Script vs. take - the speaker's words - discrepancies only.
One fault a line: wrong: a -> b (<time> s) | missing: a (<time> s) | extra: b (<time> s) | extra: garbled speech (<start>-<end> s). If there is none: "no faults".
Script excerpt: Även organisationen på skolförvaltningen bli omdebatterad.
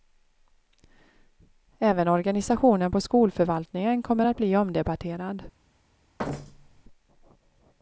extra: kommer att (4.0 s)